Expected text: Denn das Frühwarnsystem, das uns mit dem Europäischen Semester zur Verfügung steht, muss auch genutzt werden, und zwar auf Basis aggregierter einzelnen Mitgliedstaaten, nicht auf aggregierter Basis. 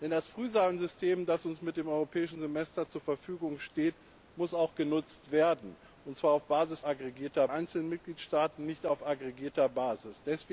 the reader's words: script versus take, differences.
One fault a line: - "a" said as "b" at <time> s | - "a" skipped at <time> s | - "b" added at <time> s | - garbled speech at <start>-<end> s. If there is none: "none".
none